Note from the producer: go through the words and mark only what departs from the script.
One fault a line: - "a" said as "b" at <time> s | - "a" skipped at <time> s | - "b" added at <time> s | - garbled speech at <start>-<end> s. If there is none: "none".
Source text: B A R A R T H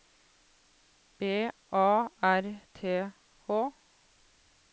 - "A R" skipped at 2.6 s